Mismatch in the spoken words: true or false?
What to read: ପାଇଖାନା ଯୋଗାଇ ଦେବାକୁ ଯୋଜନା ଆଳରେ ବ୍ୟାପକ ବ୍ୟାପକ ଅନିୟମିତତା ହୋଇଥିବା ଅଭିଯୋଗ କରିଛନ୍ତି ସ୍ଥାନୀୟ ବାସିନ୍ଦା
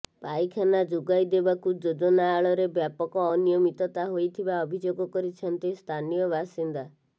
true